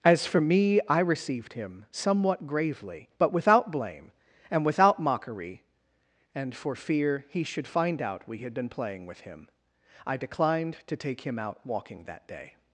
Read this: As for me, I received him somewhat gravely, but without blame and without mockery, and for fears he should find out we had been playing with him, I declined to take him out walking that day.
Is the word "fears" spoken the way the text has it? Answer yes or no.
no